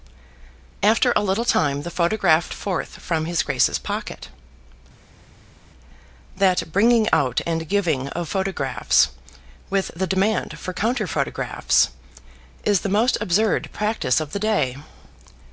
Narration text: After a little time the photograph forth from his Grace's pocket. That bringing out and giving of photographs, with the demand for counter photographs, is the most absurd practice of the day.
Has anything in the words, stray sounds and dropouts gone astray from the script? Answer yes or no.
no